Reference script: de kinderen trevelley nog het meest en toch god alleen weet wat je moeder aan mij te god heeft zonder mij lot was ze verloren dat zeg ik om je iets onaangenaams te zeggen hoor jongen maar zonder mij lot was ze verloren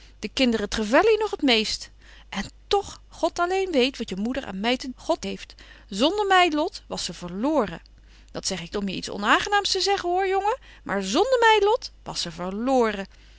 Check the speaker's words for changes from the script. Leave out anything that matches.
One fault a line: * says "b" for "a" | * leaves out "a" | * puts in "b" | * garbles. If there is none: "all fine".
all fine